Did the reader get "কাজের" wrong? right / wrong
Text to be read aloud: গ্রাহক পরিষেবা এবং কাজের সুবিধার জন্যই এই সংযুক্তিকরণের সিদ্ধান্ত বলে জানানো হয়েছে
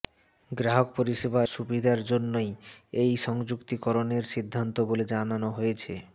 wrong